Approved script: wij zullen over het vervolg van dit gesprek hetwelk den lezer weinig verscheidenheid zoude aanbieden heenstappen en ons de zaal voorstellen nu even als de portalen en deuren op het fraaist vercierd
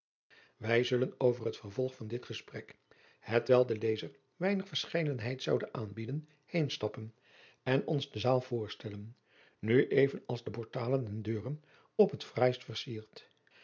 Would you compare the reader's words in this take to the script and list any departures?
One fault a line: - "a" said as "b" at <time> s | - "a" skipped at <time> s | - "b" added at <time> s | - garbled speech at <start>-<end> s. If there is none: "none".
none